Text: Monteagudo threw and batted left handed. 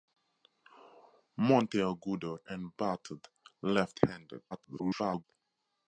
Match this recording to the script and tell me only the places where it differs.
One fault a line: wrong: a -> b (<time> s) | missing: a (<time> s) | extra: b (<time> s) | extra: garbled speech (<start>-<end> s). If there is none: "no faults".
missing: threw (2.4 s)
extra: garbled speech (4.5-5.2 s)